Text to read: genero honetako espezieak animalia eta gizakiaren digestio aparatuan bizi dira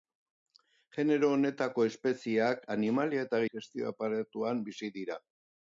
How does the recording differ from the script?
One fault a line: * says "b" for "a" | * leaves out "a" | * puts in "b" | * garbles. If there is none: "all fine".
* leaves out "gizakiaren"